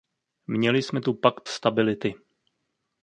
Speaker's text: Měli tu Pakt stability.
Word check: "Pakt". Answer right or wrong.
right